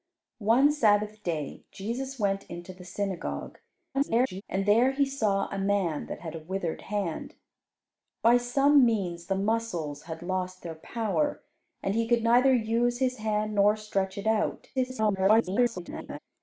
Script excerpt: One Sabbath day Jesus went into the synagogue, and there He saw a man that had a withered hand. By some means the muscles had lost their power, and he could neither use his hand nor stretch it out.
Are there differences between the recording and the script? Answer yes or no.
yes